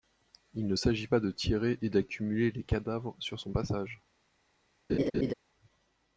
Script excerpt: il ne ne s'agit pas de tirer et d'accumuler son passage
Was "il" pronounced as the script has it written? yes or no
yes